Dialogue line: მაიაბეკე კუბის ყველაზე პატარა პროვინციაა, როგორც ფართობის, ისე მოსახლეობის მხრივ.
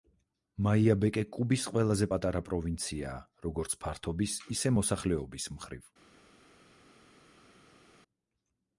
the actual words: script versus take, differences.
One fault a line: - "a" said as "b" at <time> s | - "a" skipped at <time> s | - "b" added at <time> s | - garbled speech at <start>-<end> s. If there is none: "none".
none